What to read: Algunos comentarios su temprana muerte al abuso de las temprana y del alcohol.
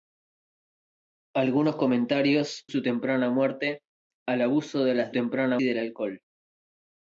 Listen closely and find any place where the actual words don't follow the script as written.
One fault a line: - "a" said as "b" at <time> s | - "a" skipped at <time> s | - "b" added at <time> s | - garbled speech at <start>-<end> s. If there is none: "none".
none